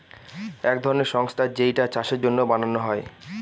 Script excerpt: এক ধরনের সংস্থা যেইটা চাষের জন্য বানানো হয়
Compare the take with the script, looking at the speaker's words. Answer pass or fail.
pass